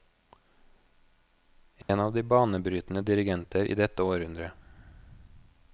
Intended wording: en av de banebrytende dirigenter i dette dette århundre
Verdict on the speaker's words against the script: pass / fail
fail